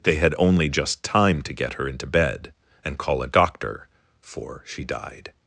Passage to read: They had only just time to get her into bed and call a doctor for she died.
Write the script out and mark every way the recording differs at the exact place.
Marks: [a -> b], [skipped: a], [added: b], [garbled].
They had only just time to get her into bed and call a doctor for she died.